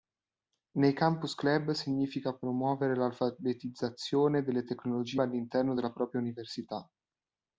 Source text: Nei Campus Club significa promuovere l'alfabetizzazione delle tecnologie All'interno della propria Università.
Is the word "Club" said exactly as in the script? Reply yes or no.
yes